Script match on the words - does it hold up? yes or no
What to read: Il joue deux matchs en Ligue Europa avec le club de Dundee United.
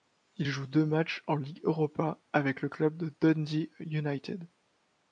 yes